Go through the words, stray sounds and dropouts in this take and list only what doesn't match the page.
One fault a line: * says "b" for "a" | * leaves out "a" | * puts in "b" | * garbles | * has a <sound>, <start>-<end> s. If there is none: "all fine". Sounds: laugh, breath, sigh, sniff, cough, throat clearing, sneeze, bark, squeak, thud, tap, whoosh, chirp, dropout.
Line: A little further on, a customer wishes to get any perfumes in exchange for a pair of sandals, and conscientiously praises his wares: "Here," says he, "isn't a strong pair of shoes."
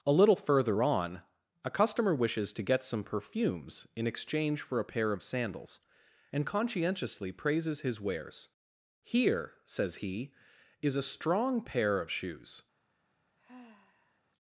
* says "some" for "any"
* says "is" for "isn't"
* has a sigh, 13.4-14.2 s